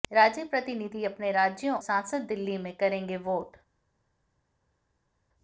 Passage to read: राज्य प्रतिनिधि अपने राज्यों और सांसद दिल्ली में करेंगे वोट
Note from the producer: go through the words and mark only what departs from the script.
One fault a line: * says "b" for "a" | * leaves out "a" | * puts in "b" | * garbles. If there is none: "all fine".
* leaves out "और"